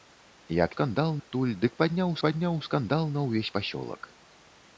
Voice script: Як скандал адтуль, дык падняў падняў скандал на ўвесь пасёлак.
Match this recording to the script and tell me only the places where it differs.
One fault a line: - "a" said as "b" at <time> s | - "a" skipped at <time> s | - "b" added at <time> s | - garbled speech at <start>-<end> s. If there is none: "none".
none